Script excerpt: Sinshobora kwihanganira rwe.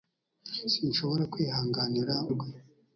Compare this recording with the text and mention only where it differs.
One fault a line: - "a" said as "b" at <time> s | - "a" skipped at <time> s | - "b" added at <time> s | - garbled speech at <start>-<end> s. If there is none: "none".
none